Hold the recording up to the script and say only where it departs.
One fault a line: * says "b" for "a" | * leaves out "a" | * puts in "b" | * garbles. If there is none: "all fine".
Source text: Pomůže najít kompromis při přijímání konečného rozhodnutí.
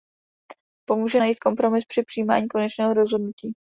all fine